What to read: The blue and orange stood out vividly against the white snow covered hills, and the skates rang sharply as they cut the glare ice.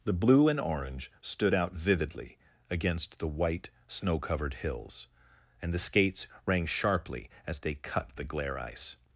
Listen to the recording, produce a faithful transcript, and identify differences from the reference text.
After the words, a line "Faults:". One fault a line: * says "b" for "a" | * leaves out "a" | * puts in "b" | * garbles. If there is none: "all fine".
The blue and orange stood out vividly against the white snow covered hills, and the skates rang sharply as they cut the glare ice.
Faults:
all fine